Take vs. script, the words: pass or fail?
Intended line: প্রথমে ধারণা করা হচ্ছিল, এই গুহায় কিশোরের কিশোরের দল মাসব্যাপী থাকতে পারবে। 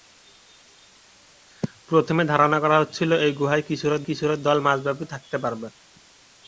pass